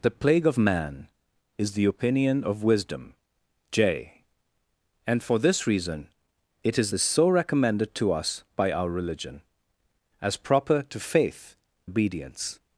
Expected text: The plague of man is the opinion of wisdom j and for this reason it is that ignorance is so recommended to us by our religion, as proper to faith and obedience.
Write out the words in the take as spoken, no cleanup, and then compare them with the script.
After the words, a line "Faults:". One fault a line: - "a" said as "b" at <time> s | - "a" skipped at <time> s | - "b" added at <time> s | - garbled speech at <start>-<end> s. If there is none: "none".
The plague of man is the opinion of wisdom j and for this reason it is is so recommended to us by our religion, as proper to faith obedience.
Faults:
- "that ignorance" skipped at 6.9 s
- "and" skipped at 11.6 s